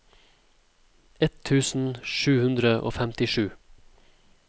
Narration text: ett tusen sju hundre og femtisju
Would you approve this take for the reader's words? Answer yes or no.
yes